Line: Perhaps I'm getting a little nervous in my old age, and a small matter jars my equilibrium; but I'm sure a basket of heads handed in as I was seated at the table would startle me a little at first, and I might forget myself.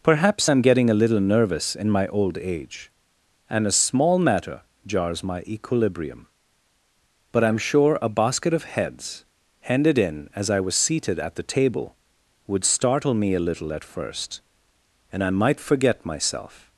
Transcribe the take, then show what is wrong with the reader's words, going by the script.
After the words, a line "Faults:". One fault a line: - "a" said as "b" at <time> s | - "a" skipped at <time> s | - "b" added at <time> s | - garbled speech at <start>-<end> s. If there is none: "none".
Perhaps I'm getting a little nervous in my old age, and a small matter jars my equilibrium; but I'm sure a basket of heads handed in as I was seated at the table would startle me a little at first, and I might forget myself.
Faults:
none